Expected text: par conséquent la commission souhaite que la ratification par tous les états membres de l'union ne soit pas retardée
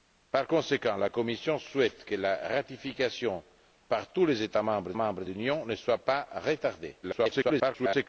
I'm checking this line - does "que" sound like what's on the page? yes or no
yes